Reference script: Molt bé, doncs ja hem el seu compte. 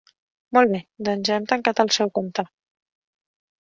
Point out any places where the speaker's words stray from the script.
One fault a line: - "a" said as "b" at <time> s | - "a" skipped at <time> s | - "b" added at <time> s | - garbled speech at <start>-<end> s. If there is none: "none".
- "tancat" added at 1.5 s